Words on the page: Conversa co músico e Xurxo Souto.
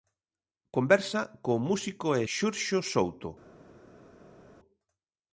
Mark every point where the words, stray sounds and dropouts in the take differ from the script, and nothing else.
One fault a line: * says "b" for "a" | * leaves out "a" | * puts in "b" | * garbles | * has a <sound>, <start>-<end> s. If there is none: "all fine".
all fine